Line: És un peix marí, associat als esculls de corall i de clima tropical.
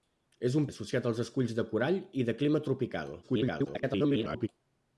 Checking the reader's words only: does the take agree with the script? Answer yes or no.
no